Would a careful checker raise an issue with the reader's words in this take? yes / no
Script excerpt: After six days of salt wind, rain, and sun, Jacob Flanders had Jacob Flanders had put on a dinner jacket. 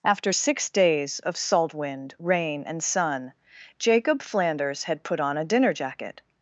yes